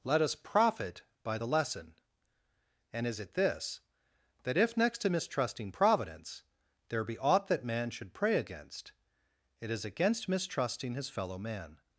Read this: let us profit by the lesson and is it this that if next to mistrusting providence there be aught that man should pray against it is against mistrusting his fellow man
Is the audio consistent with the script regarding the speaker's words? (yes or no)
yes